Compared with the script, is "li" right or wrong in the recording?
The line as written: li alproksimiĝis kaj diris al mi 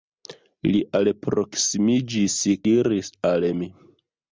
right